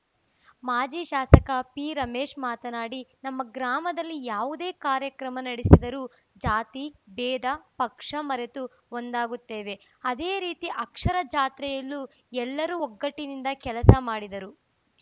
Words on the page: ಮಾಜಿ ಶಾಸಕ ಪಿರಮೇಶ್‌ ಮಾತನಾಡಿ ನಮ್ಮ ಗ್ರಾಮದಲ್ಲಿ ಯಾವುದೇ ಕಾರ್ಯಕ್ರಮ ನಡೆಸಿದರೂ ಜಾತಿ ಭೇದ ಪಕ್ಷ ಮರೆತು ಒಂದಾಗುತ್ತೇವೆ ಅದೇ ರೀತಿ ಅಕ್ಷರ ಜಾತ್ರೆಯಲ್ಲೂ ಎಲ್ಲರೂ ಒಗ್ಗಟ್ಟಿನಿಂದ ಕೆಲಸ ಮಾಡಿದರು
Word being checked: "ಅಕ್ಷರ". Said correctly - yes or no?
yes